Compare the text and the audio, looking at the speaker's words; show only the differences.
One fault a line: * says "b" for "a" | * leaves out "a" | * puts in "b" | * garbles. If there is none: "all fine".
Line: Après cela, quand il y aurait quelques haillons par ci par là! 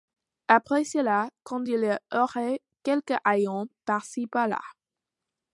all fine